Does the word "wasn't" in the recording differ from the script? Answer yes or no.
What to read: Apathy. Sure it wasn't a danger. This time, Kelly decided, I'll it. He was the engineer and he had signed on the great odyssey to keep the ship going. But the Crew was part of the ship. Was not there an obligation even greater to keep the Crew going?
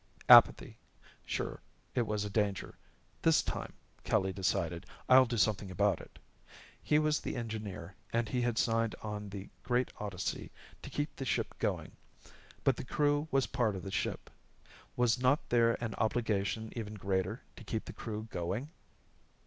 yes